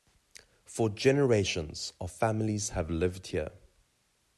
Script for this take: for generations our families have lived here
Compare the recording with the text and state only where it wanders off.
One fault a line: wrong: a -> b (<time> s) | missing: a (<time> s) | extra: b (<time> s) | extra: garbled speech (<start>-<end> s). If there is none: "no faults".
no faults